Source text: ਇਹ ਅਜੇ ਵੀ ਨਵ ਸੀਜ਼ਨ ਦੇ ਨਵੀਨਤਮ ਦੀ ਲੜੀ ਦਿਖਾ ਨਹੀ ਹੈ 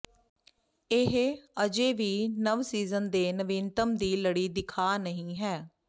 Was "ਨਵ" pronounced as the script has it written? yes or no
yes